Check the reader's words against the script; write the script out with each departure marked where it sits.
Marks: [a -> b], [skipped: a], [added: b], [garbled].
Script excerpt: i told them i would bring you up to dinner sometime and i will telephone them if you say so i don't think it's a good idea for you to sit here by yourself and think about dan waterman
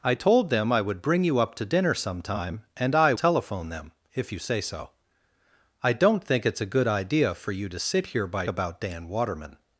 i told them i would bring you up to dinner sometime and i [skipped: will] telephone them if you say so i don't think it's a good idea for you to sit here by [skipped: yourself and think] about dan waterman